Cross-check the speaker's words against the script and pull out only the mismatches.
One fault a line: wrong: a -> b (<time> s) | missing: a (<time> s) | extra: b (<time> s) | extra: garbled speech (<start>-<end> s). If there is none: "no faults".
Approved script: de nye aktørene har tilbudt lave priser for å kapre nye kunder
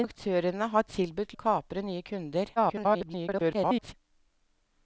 missing: nye (0.1 s)
missing: lave priser for (1.3 s)
extra: garbled speech (2.6-3.9 s)